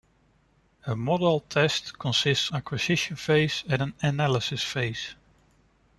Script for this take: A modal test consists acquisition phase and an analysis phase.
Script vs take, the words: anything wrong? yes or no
no